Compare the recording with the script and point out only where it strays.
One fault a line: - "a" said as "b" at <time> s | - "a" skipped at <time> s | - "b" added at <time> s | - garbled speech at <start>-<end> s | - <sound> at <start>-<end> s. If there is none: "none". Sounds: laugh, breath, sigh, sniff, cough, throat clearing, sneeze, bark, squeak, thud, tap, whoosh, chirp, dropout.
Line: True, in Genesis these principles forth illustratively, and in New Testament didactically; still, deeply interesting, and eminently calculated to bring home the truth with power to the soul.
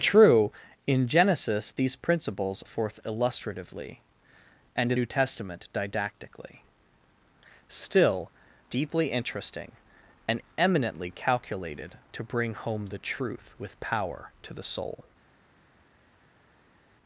none